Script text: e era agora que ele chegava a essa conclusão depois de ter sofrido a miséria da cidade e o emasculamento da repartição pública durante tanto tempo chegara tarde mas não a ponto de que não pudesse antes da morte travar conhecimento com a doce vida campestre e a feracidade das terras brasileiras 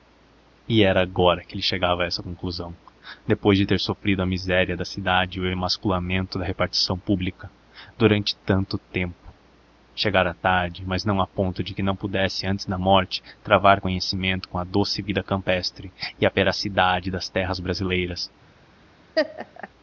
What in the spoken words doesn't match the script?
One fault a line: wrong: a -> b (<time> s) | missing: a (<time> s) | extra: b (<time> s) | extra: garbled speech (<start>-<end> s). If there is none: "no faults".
no faults